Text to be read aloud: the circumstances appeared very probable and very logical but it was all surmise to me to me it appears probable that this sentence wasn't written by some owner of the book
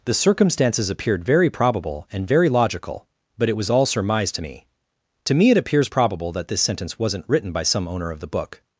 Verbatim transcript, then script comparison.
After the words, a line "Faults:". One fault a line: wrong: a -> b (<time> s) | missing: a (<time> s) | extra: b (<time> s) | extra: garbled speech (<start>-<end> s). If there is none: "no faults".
the circumstances appeared very probable and very logical but it was all surmise to me to me it appears probable that this sentence wasn't written by some owner of the book
Faults:
no faults